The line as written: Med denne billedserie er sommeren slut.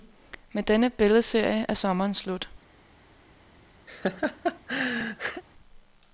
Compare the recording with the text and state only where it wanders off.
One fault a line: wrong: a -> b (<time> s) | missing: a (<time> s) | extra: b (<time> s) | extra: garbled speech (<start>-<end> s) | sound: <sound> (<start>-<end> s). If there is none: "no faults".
sound: laugh (3.9-5.4 s)